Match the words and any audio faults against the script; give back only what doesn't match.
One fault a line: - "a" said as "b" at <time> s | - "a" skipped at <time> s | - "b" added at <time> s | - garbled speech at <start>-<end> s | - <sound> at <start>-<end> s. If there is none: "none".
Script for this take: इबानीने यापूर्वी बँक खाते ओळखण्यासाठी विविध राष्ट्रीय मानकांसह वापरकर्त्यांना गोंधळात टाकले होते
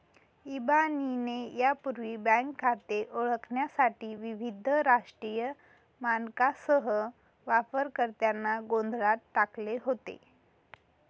none